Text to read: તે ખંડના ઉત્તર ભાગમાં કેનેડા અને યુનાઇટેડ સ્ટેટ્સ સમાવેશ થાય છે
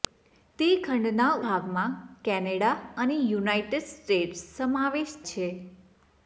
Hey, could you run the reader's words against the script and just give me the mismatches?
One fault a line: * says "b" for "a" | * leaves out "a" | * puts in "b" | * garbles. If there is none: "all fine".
* leaves out "ઉત્તર"
* leaves out "થાય"